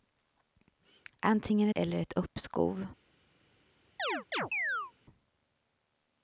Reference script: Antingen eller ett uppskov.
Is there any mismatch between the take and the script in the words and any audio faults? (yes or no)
yes